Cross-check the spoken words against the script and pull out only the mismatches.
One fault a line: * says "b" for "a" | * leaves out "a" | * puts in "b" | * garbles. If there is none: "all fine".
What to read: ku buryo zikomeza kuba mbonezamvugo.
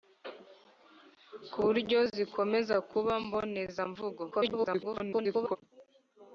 * garbles